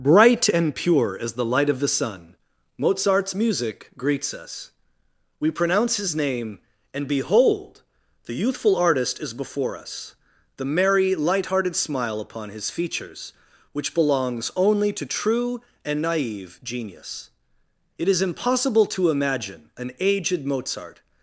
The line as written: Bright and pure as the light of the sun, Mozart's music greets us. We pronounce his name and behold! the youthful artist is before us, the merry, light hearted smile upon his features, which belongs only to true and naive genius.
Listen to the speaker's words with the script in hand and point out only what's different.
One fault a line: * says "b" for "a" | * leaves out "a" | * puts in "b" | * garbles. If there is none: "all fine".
* puts in "It is impossible to imagine an aged Mozart"